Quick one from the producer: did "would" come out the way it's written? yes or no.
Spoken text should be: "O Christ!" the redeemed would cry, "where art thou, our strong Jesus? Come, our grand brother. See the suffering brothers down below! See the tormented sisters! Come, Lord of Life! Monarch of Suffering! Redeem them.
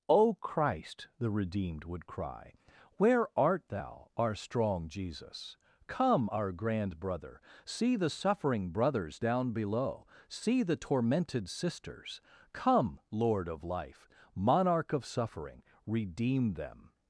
yes